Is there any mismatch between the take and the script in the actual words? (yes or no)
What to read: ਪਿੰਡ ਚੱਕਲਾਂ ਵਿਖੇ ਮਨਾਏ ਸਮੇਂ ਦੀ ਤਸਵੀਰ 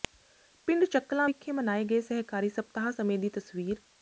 yes